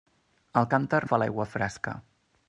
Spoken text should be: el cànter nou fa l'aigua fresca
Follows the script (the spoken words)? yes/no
no